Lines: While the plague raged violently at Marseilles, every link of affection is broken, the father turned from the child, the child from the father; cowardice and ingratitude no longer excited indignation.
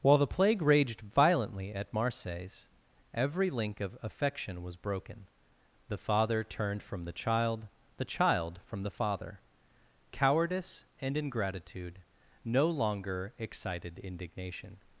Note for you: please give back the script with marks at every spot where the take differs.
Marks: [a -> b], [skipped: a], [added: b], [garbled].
While the plague raged violently at Marseilles, every link of affection [is -> was] broken, the father turned from the child, the child from the father; cowardice and ingratitude no longer excited indignation.